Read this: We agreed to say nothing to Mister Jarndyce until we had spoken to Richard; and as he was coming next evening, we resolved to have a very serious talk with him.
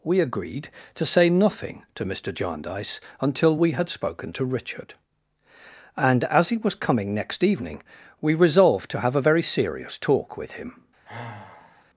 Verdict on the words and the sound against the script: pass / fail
fail